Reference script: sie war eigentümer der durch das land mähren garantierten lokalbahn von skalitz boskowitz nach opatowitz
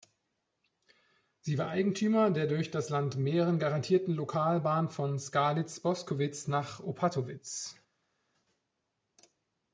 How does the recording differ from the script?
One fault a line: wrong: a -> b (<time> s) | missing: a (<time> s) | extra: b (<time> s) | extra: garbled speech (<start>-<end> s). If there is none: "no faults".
no faults